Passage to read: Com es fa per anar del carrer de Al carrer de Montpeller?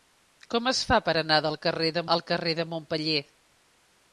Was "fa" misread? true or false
false